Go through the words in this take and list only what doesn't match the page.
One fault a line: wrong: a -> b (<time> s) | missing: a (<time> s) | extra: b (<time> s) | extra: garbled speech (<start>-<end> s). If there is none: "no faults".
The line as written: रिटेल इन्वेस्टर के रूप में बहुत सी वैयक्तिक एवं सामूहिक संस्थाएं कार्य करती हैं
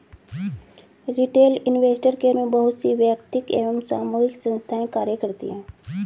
missing: रूप (2.3 s)